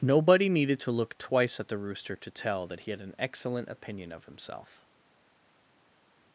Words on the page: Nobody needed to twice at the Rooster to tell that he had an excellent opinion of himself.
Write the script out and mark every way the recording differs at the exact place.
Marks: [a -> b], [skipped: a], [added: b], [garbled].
Nobody needed to [added: look] twice at the Rooster to tell that he had an excellent opinion of himself.